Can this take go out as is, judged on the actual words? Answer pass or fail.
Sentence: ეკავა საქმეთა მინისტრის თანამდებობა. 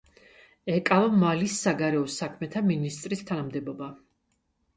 fail